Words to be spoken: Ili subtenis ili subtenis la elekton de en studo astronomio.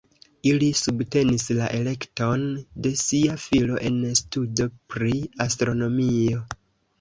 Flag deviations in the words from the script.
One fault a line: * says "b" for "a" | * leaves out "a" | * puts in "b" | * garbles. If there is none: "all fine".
* leaves out "ili subtenis"
* puts in "sia filo"
* puts in "pri"